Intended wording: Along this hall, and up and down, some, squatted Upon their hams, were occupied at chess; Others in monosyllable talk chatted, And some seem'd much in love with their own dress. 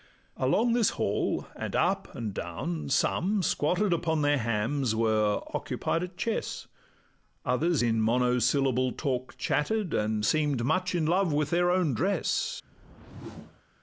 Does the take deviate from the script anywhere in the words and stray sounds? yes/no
yes